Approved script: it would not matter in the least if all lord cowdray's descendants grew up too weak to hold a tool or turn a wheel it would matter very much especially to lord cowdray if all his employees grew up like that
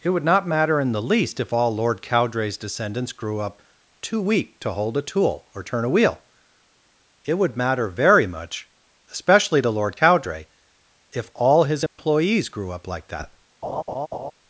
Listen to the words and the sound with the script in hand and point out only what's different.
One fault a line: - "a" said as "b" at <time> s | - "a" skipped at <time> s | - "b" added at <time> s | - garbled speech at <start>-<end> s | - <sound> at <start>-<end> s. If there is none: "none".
- dropout at 11.9-12.0 s
- laugh at 13.6-14.3 s